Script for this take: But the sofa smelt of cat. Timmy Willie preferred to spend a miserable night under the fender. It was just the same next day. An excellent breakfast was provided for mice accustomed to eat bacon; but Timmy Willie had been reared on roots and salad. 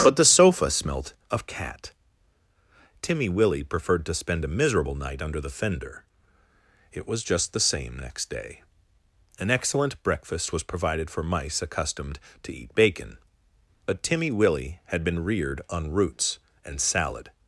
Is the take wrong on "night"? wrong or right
right